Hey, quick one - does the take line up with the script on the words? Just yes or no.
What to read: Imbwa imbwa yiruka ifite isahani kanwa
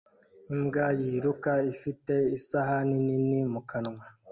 no